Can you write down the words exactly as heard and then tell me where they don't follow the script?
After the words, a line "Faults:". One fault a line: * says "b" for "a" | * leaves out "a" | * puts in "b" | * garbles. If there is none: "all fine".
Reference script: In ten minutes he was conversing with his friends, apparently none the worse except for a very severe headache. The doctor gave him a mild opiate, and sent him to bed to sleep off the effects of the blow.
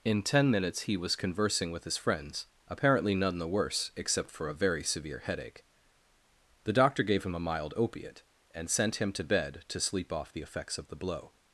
In ten minutes he was conversing with his friends, apparently none the worse except for a very severe headache. The doctor gave him a mild opiate, and sent him to bed to sleep off the effects of the blow.
Faults:
all fine